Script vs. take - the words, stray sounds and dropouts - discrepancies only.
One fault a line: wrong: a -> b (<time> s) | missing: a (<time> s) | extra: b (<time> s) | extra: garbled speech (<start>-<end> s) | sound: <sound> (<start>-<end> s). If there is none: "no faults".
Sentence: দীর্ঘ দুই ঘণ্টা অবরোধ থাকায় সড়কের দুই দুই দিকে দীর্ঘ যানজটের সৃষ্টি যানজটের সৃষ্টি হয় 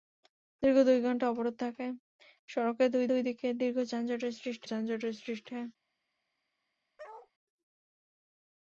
sound: bark (7.0-7.3 s)